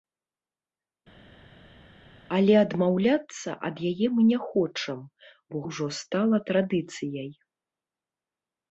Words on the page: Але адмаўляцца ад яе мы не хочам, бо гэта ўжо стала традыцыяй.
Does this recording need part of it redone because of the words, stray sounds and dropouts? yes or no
yes